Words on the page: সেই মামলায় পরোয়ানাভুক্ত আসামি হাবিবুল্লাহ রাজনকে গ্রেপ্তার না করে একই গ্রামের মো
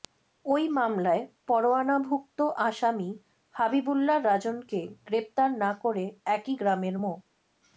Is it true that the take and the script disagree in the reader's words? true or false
true